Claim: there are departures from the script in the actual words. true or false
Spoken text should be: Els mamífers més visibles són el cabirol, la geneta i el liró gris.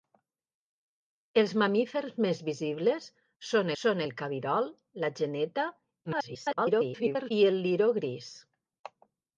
true